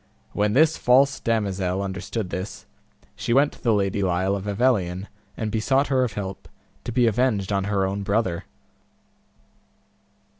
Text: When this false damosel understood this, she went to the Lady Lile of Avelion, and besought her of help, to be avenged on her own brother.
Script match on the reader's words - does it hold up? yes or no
yes